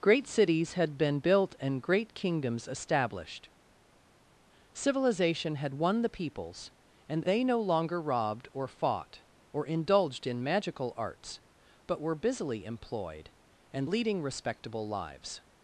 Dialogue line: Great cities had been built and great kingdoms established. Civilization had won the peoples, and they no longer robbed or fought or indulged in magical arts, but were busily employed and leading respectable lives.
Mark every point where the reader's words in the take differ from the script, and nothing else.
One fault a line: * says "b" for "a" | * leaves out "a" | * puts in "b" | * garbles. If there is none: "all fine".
all fine